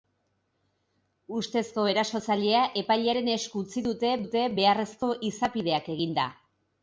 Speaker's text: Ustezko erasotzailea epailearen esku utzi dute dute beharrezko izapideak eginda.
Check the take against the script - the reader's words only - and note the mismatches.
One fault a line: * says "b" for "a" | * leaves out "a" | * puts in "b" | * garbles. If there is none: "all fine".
all fine